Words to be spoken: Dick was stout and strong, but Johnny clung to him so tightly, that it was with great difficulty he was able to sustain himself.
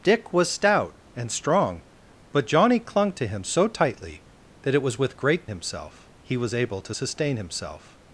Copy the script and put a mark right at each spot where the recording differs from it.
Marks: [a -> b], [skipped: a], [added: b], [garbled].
Dick was stout and strong, but Johnny clung to him so tightly, that it was with great [difficulty -> himself] he was able to sustain himself.